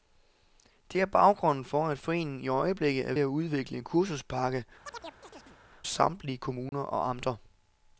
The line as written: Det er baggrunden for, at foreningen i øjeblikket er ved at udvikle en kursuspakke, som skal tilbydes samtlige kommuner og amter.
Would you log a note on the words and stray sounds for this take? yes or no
yes